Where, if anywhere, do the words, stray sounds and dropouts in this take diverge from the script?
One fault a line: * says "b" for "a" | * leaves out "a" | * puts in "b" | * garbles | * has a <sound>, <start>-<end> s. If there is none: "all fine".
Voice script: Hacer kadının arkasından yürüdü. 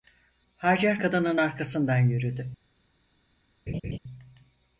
* has a laugh, 3.7-4.0 s